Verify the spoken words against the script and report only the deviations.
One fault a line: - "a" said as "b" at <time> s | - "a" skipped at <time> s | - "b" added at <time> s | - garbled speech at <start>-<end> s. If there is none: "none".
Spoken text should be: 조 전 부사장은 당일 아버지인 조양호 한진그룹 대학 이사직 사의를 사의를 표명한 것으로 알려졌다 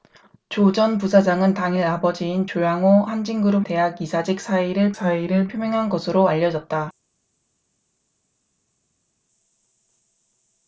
none